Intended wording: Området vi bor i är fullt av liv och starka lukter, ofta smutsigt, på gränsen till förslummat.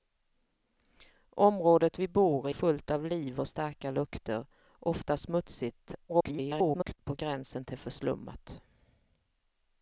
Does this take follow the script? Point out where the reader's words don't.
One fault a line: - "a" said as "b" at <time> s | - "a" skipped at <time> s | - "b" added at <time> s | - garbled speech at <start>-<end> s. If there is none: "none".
- "i är" skipped at 2.5 s
- garbled speech at 6.1-7.0 s